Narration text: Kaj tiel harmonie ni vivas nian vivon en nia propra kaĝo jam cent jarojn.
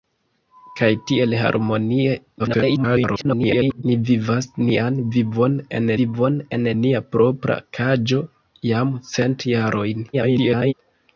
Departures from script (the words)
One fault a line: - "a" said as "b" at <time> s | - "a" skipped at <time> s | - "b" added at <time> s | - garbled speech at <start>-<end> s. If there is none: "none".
- garbled speech at 2.4-3.8 s
- "vivon en" added at 6.0 s
- garbled speech at 10.1-10.7 s